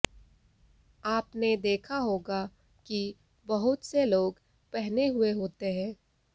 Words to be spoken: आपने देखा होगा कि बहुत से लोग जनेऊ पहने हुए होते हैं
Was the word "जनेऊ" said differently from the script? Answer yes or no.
yes